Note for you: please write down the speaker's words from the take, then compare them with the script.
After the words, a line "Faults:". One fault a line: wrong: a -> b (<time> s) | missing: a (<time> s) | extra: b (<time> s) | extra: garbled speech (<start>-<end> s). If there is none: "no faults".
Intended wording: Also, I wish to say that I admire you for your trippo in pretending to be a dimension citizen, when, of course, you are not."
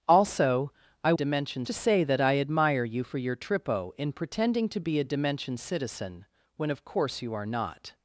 Also, I dimension to say that I admire you for your trippo in pretending to be a dimension citizen, when, of course, you are not."
Faults:
wrong: wish -> dimension (1.1 s)